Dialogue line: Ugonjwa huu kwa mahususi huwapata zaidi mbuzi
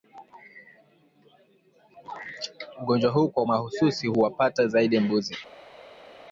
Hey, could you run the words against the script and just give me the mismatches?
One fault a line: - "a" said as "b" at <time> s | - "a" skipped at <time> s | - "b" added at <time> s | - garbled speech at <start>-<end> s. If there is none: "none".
none